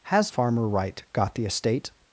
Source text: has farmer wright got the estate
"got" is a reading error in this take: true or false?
false